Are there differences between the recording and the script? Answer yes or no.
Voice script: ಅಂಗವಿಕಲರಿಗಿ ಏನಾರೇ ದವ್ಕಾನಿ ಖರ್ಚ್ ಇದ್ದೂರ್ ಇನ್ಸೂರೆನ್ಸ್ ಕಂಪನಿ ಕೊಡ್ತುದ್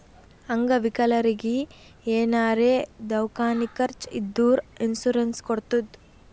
yes